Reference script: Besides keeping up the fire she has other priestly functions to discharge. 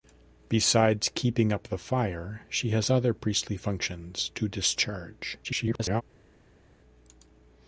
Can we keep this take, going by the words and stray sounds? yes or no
no